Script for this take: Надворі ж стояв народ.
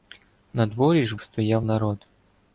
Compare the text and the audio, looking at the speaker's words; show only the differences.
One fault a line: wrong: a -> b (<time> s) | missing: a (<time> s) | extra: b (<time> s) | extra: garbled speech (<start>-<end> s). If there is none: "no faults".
no faults